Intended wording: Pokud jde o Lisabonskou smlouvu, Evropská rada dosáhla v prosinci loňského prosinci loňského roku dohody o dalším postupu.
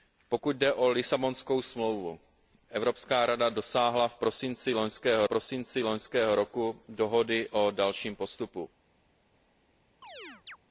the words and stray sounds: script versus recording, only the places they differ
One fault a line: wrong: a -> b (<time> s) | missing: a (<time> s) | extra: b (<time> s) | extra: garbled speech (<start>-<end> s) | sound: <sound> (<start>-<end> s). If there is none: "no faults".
sound: chirp (10.0-10.6 s)